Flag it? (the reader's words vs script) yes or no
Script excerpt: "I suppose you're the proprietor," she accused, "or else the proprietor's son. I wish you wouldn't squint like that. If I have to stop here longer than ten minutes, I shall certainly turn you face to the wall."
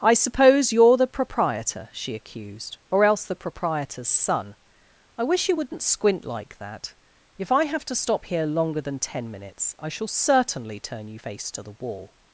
no